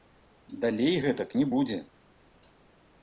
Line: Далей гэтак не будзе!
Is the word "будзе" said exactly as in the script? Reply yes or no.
yes